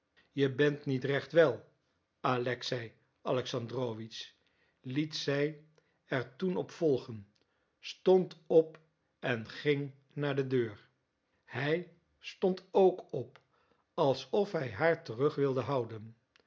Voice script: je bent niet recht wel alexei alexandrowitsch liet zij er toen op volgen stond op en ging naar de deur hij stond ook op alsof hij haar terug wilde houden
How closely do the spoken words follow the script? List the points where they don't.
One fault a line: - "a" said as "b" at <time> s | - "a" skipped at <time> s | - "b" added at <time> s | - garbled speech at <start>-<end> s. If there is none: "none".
none